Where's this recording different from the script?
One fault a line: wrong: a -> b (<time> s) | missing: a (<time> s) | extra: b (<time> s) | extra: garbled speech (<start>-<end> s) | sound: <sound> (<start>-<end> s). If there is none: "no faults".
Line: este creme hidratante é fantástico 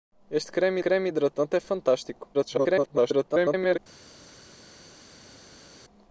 extra: creme (0.8 s)
extra: garbled speech (2.3-3.8 s)